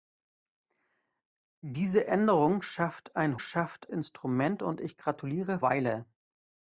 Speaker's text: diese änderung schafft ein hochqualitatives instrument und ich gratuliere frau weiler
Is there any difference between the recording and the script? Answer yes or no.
yes